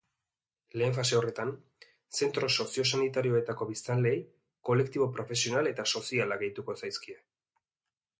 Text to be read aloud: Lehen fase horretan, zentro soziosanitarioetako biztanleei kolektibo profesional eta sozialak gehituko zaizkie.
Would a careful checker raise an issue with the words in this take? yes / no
no